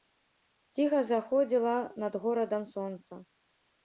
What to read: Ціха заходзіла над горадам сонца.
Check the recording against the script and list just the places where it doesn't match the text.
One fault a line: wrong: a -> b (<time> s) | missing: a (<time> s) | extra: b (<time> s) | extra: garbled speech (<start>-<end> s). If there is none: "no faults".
no faults